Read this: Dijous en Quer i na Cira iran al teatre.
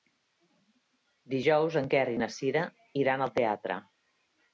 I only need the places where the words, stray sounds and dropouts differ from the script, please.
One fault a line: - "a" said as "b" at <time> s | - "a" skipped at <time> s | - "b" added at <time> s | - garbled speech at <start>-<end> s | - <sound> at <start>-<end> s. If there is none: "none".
none